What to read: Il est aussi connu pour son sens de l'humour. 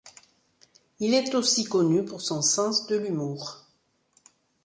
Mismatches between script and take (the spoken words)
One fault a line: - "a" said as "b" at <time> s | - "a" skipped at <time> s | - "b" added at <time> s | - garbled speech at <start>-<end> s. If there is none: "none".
none